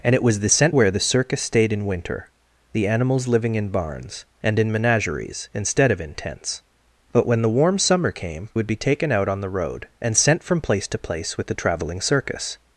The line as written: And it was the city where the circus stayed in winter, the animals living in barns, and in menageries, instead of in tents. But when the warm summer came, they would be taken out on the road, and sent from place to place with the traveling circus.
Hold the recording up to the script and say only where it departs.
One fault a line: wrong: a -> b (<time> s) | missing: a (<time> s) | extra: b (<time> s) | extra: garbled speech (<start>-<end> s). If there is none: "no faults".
wrong: city -> sent (0.5 s)
missing: they (8.5 s)